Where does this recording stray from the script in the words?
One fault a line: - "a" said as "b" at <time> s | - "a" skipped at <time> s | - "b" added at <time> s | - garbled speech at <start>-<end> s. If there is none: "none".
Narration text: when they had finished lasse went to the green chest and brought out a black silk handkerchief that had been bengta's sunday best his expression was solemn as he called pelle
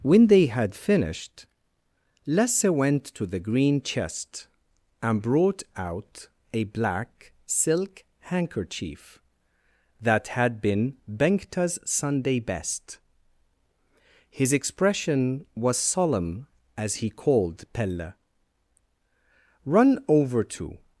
- "run over to" added at 19.6 s